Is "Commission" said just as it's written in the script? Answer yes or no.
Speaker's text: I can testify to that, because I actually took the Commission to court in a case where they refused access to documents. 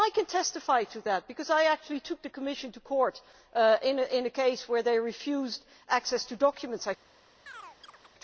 yes